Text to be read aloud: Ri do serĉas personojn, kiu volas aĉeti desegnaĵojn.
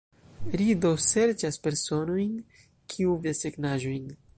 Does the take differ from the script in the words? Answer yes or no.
yes